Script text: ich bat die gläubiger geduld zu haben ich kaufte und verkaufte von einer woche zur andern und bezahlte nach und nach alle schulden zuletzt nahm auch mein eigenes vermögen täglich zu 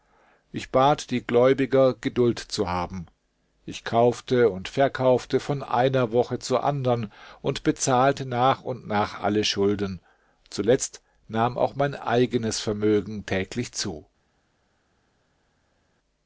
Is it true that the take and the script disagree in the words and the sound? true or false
false